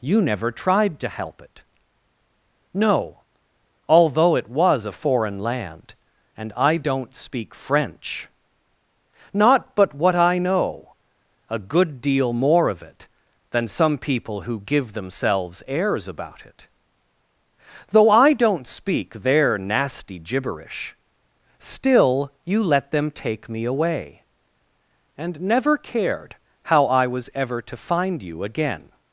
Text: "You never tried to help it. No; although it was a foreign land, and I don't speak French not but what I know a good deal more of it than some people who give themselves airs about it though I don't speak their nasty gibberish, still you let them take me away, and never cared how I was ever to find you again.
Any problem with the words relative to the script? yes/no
no